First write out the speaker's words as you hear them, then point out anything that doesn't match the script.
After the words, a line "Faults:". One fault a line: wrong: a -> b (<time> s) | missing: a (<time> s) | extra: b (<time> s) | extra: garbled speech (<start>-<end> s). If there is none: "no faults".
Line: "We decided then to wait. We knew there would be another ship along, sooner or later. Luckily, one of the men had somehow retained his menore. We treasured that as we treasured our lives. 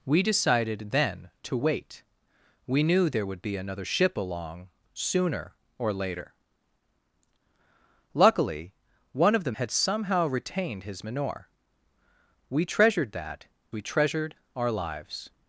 "We decided then to wait. We knew there would be another ship along, sooner or later. Luckily, one of the had somehow retained his menore. We treasured that we treasured our lives.
Faults:
missing: men (9.5 s)
missing: as (13.5 s)